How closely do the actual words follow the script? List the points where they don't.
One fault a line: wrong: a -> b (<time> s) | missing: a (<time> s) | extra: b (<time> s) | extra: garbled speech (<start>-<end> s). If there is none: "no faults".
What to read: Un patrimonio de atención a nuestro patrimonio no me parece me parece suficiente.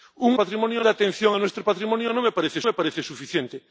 no faults